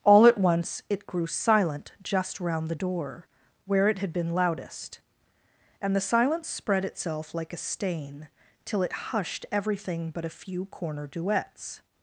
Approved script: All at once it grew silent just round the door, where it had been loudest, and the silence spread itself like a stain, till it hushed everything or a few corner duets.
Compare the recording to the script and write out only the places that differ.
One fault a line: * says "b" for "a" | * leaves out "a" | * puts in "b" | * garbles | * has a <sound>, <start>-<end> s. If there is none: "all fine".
* says "but" for "or"